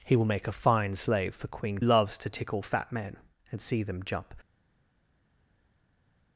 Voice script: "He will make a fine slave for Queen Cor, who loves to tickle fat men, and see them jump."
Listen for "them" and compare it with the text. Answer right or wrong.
right